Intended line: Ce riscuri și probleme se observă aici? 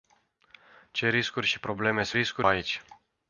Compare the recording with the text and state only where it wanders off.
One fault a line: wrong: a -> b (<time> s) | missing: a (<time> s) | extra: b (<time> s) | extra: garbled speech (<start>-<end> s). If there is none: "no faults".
wrong: observă -> riscuri (2.1 s)